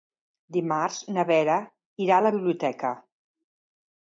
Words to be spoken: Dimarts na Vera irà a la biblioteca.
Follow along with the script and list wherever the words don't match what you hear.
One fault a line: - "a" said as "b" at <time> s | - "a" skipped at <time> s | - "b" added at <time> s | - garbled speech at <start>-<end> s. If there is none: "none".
none